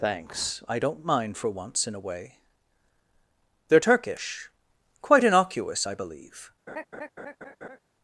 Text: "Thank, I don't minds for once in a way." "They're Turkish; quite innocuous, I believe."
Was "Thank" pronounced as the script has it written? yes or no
no